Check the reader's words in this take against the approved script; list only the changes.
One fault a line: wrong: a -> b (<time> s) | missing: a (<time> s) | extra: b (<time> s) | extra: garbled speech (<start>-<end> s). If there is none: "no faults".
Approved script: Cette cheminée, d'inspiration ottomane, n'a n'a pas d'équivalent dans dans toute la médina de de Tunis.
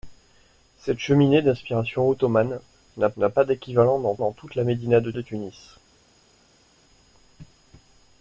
no faults